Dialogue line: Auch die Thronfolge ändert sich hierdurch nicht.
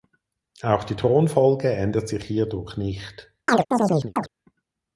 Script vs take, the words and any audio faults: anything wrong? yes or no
yes